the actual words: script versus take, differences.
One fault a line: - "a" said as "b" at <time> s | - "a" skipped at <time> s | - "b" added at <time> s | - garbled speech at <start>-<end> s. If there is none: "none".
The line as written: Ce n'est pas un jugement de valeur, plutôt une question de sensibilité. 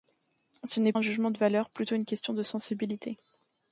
- "pas" skipped at 0.9 s